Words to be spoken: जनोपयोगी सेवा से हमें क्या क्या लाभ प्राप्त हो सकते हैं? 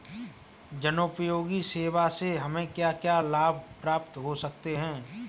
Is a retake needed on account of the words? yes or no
no